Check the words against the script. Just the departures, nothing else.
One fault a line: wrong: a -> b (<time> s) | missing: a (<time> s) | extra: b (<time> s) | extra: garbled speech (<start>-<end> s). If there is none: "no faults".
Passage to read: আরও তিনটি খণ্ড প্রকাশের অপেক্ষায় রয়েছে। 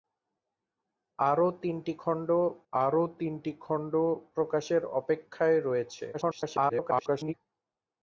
extra: আরও তিনটি খণ্ড (2.7 s)
extra: garbled speech (6.1-7.3 s)